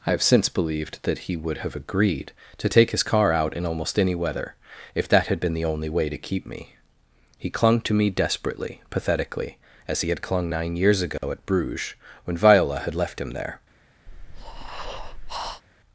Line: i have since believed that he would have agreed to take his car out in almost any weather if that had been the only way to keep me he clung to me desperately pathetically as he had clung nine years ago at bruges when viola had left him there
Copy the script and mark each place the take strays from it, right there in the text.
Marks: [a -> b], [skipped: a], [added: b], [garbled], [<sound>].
i have since believed that he would have agreed to take his car out in almost any weather if that had been the only way to keep me he clung to me desperately pathetically as he had clung nine years ago [dropout] at bruges when viola had left him there [breath]